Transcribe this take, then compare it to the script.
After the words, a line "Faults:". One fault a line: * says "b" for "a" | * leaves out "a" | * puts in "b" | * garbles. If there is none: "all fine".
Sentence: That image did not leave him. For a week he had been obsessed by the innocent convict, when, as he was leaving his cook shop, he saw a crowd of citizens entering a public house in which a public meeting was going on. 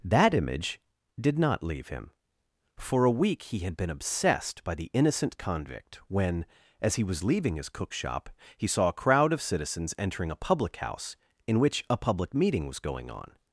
That image did not leave him. For a week he had been obsessed by the innocent convict, when, as he was leaving his cook shop, he saw a crowd of citizens entering a public house in which a public meeting was going on.
Faults:
all fine